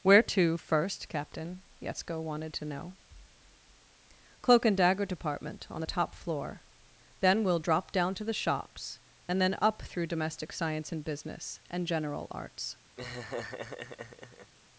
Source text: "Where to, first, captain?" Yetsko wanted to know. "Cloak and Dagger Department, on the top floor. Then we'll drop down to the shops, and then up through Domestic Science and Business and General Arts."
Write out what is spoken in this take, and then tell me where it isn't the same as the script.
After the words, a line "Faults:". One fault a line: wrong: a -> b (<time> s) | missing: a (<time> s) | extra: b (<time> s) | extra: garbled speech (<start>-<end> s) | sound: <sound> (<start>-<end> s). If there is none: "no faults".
"Where to, first, captain?" Yetsko wanted to know. "Cloak and Dagger Department, on the top floor. Then we'll drop down to the shops, and then up through Domestic Science and Business and General Arts."
Faults:
sound: laugh (13.0-14.5 s)